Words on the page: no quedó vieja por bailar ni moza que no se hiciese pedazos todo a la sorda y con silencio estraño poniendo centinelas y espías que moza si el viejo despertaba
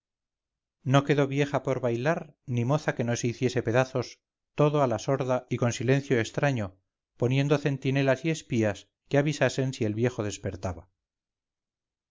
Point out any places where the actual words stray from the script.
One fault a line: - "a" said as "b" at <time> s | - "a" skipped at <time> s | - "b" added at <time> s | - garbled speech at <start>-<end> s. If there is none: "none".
- "moza" said as "avisasen" at 9.2 s